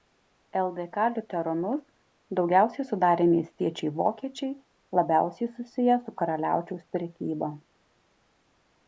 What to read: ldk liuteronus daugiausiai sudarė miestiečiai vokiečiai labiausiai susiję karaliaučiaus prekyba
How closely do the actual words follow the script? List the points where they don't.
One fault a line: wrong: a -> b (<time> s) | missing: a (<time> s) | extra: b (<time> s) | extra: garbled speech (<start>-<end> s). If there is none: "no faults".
extra: su (6.1 s)